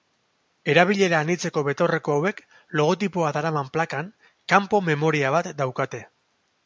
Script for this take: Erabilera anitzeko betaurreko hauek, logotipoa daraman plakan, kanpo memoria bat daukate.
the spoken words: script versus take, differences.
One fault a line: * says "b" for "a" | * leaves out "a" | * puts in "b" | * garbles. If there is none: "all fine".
all fine